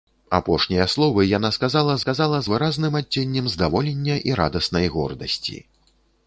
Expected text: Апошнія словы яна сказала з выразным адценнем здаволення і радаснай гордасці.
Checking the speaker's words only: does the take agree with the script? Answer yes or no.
no